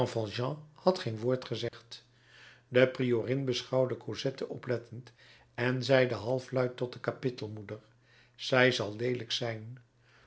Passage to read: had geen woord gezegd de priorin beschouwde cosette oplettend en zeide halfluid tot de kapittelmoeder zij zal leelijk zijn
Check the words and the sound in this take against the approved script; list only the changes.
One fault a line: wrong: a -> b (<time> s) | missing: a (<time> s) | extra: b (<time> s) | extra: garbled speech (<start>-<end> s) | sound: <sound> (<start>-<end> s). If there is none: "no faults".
sound: dropout (1.7-1.7 s)